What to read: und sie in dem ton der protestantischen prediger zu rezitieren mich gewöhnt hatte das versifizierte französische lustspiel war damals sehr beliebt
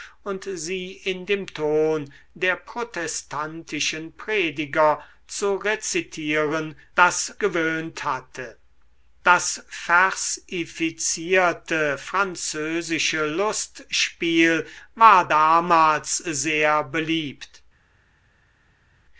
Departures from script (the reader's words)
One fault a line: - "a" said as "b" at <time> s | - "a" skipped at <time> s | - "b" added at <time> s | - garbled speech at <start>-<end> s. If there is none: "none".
- "mich" said as "das" at 6.9 s